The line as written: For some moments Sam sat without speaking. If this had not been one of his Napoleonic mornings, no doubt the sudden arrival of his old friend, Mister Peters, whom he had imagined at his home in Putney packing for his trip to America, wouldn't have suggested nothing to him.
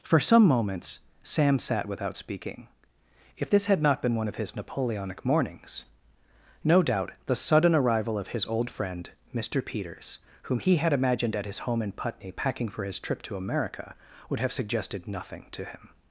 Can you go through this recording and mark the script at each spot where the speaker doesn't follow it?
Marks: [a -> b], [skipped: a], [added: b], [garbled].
For some moments Sam sat without speaking. If this had not been one of his Napoleonic mornings, no doubt the sudden arrival of his old friend, Mister Peters, whom he had imagined at his home in Putney packing for his trip to America, [wouldn't -> would] have suggested nothing to him.